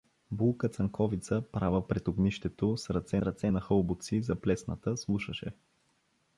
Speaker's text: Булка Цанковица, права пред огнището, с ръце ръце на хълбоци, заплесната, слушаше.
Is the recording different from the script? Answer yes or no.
no